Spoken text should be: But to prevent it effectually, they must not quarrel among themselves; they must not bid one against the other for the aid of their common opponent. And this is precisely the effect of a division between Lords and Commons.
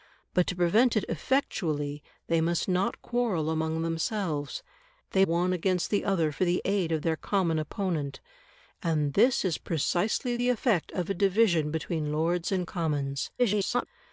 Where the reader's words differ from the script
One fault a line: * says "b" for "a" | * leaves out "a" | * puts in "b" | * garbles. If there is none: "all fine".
* leaves out "must not bid"
* garbles